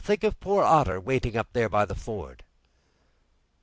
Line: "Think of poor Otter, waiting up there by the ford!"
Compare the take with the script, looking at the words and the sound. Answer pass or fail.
pass